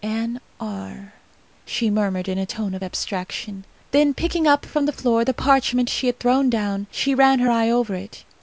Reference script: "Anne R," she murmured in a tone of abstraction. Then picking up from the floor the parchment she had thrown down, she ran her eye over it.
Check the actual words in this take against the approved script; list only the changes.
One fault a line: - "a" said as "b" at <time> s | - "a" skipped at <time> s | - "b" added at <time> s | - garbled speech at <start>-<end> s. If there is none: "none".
none